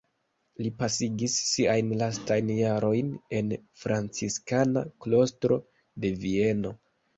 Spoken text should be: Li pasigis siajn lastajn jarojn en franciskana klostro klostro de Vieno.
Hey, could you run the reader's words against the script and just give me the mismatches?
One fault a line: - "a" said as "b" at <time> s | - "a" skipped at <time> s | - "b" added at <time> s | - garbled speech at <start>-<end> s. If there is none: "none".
- "klostro" skipped at 5.6 s